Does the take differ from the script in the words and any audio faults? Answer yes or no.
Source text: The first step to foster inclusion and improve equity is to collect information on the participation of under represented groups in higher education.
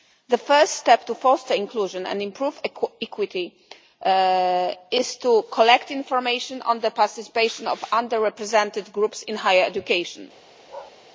yes